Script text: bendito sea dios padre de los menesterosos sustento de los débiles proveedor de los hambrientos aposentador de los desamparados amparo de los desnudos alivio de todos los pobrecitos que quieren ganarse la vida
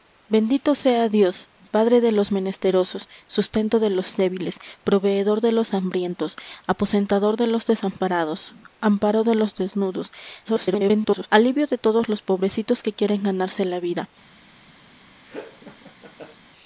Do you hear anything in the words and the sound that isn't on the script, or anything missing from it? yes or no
yes